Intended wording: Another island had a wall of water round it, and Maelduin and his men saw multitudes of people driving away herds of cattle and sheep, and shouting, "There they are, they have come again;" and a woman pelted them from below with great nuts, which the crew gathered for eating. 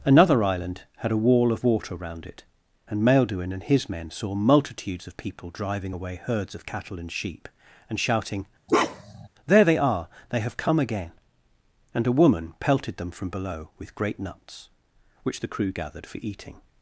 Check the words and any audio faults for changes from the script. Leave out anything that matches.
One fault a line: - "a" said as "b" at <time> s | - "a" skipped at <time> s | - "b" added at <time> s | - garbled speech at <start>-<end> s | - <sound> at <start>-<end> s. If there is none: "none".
- bark at 8.7-9.3 s